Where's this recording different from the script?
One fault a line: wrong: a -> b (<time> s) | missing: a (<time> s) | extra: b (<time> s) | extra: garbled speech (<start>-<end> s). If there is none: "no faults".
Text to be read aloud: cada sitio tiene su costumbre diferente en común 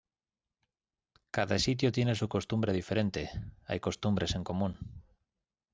extra: hay costumbres (3.7 s)